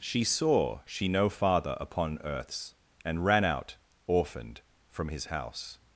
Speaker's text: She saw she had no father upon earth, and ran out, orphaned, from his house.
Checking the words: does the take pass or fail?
fail